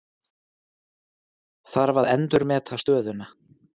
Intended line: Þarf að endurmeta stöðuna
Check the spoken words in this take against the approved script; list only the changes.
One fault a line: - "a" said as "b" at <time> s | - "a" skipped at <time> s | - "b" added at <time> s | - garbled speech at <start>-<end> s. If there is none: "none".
none